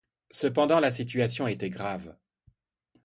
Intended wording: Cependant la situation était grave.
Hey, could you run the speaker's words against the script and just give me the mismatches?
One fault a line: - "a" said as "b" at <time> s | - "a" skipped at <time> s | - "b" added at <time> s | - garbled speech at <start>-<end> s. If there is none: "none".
none